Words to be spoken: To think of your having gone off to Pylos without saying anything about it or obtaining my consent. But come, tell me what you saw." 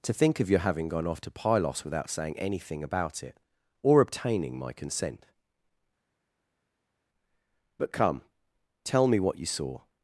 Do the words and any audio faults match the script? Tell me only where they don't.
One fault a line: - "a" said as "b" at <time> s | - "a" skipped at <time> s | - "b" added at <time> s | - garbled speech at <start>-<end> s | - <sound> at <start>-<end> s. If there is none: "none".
none